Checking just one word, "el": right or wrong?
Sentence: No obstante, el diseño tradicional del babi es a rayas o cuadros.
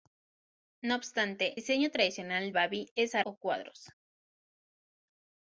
wrong